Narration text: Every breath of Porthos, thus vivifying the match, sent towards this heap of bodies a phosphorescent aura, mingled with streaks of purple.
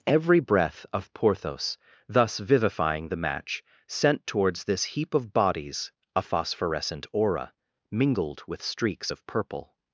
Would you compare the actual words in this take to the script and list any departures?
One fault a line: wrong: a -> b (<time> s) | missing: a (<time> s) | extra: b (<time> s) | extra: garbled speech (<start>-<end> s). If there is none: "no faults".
no faults